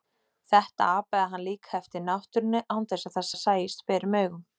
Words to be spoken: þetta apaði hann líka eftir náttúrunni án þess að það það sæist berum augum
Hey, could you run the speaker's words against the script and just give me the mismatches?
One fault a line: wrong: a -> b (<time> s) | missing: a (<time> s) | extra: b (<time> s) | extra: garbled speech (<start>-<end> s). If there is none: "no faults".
no faults